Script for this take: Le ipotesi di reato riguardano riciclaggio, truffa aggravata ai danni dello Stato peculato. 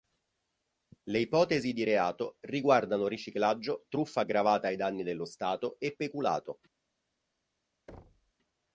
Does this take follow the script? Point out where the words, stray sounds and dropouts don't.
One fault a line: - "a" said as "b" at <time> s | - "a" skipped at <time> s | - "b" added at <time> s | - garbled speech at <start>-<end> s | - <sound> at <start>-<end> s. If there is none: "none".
- "e" added at 5.8 s
- thud at 7.9-8.3 s